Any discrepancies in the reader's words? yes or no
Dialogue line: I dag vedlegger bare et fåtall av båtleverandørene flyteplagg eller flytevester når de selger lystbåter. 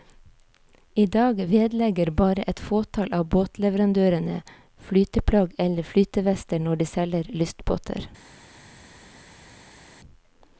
no